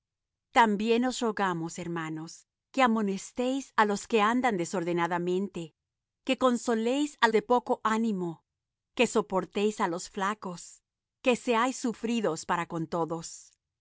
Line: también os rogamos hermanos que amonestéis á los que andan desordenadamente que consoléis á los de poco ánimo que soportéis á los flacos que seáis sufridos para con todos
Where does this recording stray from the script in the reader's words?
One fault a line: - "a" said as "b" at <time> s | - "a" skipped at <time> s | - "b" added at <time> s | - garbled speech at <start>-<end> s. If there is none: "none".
- "los" skipped at 7.3 s